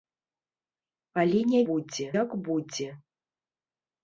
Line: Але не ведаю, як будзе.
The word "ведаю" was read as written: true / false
false